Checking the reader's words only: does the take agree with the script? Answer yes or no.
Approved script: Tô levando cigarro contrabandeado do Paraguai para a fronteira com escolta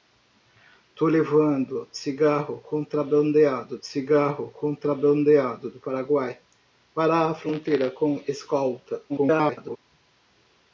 no